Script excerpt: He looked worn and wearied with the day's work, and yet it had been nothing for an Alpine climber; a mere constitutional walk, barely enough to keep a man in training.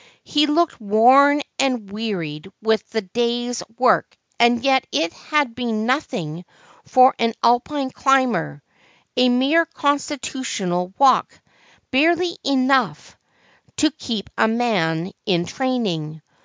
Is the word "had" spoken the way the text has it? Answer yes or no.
yes